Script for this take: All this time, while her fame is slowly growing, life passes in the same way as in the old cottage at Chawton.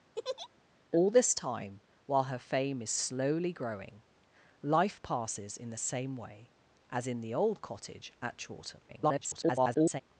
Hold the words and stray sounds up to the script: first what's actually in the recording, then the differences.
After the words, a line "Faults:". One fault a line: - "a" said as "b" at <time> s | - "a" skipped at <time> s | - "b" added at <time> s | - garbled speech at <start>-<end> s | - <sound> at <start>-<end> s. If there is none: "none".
All this time, while her fame is slowly growing, life passes in the same way as in the old cottage at Chawton. [garbled]
Faults:
- laugh at 0.2-0.5 s
- garbled speech at 8.9-10.0 s